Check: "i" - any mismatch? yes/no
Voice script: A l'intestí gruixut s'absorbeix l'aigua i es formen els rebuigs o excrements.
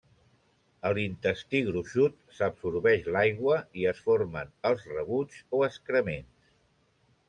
no